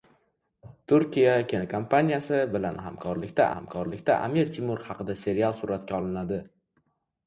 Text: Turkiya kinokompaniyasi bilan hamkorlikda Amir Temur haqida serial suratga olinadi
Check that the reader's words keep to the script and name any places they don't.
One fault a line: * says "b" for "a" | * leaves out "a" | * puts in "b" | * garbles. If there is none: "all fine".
* puts in "hamkorlikda"